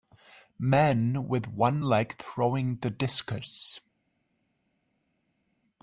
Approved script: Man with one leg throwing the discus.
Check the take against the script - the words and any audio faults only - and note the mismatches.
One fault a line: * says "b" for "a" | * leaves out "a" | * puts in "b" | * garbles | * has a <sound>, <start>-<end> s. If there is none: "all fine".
all fine